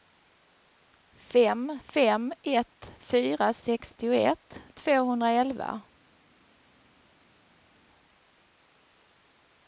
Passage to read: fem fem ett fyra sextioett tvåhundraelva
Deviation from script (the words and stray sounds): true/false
false